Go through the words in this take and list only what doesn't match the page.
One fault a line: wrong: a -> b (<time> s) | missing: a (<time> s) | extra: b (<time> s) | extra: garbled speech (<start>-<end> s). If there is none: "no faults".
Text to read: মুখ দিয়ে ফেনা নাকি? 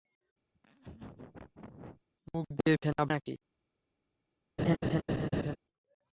no faults